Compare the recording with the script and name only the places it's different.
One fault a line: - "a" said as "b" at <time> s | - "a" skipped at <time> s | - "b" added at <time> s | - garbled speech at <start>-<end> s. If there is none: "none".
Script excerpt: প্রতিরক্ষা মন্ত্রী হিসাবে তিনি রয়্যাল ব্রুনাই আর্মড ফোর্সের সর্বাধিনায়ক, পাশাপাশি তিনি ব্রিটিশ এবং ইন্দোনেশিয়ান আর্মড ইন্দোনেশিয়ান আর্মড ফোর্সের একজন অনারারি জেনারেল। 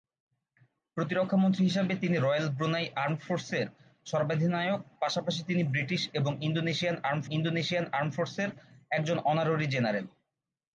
none